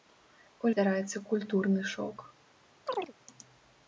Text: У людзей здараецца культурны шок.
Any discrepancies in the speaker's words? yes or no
yes